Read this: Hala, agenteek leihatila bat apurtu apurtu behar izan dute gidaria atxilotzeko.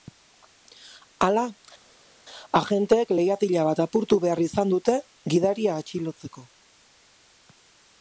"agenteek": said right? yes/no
yes